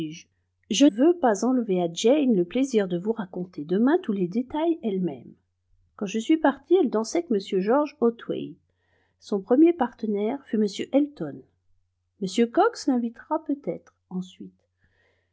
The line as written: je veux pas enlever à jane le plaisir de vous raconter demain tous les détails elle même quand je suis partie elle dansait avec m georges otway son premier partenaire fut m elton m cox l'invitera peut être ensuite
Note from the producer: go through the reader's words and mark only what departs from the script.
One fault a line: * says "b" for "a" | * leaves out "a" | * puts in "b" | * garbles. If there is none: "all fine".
all fine